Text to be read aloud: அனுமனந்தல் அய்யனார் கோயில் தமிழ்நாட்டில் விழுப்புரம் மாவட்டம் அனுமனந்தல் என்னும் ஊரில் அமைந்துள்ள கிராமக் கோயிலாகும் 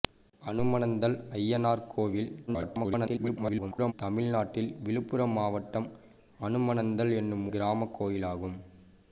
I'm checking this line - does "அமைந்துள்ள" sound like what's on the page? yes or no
no